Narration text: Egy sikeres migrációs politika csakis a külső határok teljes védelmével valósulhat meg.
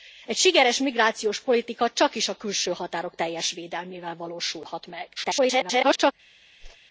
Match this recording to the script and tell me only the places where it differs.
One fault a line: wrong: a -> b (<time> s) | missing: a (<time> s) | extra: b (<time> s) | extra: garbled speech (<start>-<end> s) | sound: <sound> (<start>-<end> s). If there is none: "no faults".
extra: garbled speech (5.2-6.1 s)
sound: whoosh (6.6-6.8 s)